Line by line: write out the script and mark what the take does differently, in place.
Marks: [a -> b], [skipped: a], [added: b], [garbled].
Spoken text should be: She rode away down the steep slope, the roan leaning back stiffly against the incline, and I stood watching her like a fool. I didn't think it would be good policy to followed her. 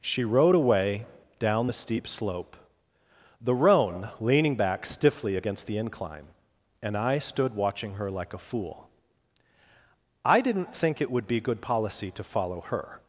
She rode away down the steep slope, the roan leaning back stiffly against the incline, and I stood watching her like a fool. I didn't think it would be good policy to [followed -> follow] her.